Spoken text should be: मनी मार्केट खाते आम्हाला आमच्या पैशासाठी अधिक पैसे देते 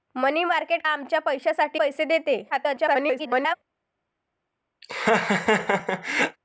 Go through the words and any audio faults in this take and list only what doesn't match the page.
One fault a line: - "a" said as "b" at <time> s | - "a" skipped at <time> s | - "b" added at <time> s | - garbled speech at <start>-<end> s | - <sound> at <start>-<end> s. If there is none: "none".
- "खाते आम्हाला" skipped at 0.8 s
- "अधिक" skipped at 1.8 s
- garbled speech at 2.5-3.6 s
- laugh at 4.8-6.4 s